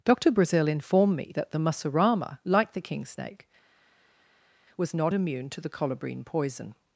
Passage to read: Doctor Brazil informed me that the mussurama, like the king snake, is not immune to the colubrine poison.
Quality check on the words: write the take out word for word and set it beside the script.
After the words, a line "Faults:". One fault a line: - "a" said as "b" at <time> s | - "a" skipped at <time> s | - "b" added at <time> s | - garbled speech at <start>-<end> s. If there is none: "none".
Doctor Brazil informed me that the mussurama, like the king snake, was not immune to the colubrine poison.
Faults:
- "is" said as "was" at 4.8 s